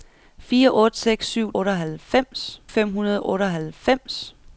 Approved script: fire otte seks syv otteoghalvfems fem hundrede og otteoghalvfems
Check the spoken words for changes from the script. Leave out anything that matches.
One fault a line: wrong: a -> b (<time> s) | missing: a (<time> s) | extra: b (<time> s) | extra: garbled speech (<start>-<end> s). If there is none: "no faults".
no faults